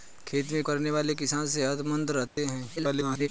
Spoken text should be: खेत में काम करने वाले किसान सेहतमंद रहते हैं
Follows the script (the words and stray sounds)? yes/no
no